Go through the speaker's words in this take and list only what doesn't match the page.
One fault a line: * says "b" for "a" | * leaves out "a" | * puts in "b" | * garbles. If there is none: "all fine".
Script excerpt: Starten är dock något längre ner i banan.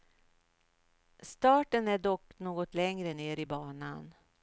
all fine